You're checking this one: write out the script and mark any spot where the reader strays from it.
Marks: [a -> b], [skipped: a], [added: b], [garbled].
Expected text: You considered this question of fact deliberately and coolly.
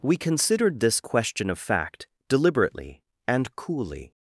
[You -> We] considered this question of fact deliberately and coolly.